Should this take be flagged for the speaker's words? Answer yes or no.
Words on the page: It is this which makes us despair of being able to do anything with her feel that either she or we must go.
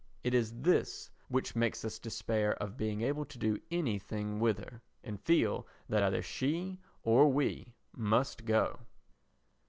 yes